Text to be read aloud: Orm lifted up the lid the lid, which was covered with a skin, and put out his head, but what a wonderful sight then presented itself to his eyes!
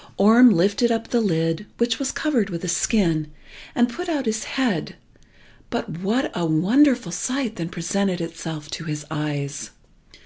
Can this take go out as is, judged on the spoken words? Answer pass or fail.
fail